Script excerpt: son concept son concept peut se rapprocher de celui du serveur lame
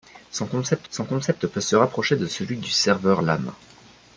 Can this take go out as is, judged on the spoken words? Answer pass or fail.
pass